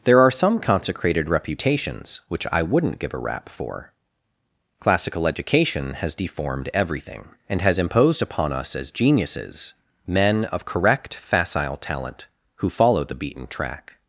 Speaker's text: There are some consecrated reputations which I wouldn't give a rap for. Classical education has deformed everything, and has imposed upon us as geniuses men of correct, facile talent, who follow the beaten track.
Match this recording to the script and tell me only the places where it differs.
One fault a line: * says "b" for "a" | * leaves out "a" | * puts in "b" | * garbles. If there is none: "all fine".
all fine